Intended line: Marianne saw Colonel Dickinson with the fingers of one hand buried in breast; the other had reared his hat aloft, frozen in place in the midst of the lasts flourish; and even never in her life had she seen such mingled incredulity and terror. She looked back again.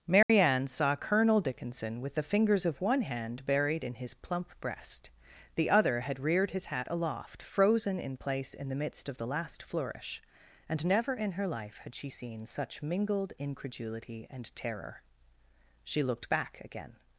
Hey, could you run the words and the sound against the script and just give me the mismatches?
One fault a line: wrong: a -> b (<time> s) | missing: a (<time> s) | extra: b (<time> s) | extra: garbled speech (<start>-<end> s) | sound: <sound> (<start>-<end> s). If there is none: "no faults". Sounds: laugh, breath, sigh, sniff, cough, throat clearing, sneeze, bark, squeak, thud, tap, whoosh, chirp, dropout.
sound: dropout (0.2-0.3 s)
extra: his plump (4.0 s)
wrong: lasts -> last (9.3 s)
missing: even (10.8 s)